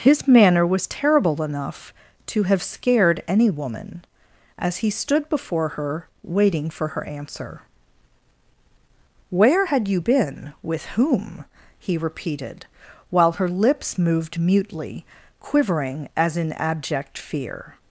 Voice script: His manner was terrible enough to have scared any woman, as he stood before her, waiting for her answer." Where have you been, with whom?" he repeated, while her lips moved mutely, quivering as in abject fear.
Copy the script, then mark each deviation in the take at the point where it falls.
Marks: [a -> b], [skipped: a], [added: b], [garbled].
His manner was terrible enough to have scared any woman, as he stood before her, waiting for her answer." Where [have -> had] you been, with whom?" he repeated, while her lips moved mutely, quivering as in abject fear.